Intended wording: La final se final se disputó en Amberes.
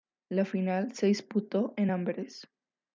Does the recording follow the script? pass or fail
fail